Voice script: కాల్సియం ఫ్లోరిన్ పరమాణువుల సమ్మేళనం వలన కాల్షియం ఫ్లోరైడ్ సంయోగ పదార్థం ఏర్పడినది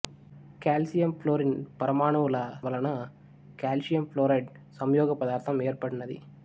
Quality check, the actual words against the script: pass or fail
fail